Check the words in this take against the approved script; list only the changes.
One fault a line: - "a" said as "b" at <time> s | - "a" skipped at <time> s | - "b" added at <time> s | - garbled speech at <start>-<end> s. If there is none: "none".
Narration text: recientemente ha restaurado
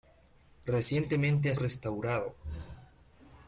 none